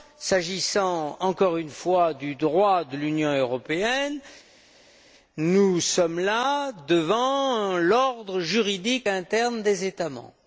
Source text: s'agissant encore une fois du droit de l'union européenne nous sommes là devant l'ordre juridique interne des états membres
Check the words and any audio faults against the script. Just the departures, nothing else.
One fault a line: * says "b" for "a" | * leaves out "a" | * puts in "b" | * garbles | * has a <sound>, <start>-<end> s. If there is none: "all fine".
all fine